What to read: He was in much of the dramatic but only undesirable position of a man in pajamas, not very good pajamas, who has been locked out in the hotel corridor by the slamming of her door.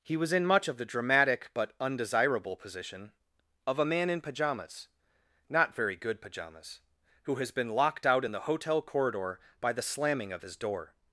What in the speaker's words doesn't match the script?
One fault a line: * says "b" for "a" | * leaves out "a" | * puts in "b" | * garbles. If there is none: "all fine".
* leaves out "only"
* says "his" for "her"